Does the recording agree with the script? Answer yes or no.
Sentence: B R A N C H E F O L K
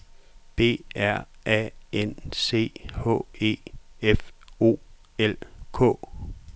yes